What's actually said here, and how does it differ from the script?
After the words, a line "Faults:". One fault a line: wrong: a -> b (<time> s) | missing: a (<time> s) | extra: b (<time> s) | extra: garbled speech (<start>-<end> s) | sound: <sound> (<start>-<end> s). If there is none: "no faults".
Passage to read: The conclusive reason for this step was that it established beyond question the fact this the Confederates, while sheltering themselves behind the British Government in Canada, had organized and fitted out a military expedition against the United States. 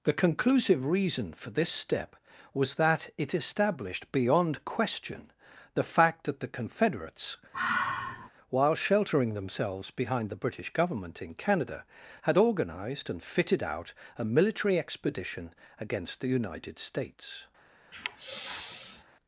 The conclusive reason for this step was that it established beyond question the fact that the Confederates, while sheltering themselves behind the British Government in Canada, had organized and fitted out a military expedition against the United States.
Faults:
wrong: this -> that (6.2 s)
sound: sigh (7.5-8.3 s)
sound: sigh (17.9-19.0 s)